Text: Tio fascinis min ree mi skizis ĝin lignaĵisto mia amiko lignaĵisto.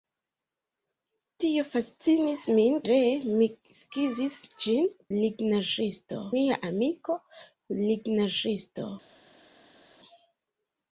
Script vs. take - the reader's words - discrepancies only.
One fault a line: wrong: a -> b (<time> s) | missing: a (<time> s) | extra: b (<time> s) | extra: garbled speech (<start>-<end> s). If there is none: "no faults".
no faults